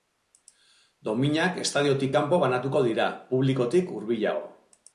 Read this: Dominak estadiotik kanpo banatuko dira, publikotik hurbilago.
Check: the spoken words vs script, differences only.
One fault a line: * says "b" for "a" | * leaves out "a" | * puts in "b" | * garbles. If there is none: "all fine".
all fine